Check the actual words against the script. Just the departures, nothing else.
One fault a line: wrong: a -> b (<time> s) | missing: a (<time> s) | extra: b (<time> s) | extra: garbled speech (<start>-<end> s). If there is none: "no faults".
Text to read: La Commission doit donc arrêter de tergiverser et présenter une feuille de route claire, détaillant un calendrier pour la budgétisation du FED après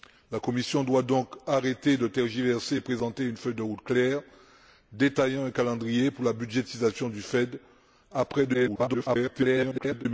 extra: garbled speech (8.5-10.1 s)